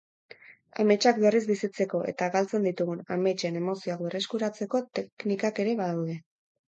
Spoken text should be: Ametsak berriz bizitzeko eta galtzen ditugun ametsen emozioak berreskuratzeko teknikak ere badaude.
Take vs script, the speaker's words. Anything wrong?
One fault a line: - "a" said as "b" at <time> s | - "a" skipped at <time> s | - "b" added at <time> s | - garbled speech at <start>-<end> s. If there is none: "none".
none